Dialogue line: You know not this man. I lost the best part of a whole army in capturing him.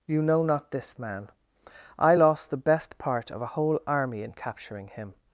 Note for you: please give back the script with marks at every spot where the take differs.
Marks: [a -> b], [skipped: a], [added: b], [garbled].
You know not this man. I lost the best part of a whole army in capturing him.